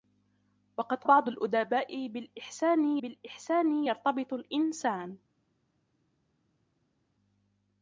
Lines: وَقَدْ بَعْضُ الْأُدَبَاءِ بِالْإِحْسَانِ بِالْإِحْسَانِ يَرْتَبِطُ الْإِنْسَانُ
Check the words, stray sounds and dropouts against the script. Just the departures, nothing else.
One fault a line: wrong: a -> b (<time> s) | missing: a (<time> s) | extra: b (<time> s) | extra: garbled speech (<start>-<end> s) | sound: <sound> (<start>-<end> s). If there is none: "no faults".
no faults